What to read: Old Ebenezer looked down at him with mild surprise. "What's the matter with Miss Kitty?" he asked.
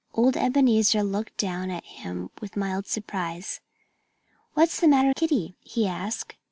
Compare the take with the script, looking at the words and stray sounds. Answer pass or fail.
fail